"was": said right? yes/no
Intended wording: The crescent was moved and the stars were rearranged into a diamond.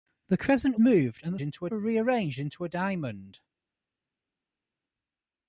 no